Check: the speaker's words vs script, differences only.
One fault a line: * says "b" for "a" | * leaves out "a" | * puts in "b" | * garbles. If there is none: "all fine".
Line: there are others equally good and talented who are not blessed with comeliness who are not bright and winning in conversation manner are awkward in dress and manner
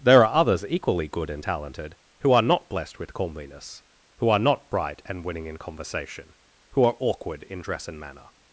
* says "who" for "manner"